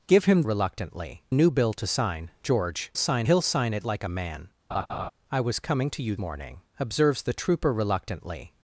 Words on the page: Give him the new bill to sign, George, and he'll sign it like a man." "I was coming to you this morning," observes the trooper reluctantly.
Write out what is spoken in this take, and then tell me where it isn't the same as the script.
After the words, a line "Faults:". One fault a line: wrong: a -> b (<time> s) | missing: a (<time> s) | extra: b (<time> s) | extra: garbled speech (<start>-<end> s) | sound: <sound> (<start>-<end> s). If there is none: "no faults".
Give him reluctantly new bill to sign, George, sign he'll sign it like a man." "I was coming to you morning," observes the trooper reluctantly.
Faults:
wrong: the -> reluctantly (0.4 s)
wrong: and -> sign (3.0 s)
sound: laugh (4.7-5.1 s)
missing: this (6.1 s)